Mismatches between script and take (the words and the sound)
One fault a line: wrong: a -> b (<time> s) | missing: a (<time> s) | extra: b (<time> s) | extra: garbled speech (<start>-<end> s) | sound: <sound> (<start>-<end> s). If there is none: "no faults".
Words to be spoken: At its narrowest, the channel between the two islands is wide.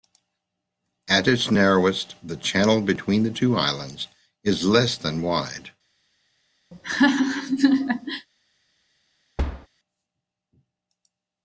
extra: less than (4.7 s)
sound: laugh (6.7-8.3 s)
sound: thud (9.4-9.7 s)